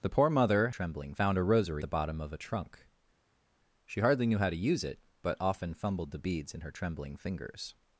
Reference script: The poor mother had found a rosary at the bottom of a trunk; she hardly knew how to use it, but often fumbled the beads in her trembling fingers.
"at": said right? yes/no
no